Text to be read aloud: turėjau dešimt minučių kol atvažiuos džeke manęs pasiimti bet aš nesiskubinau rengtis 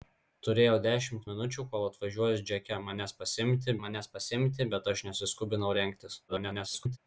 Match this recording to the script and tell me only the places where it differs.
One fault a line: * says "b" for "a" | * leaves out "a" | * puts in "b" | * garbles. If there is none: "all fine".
* puts in "manęs pasiimti"
* garbles